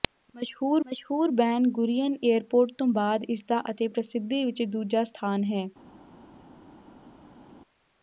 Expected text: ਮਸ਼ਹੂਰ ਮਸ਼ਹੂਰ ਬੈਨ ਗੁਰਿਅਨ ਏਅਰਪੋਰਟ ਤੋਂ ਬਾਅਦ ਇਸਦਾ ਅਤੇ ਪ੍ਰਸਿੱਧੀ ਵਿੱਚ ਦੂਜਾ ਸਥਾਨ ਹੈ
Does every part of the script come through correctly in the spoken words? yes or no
yes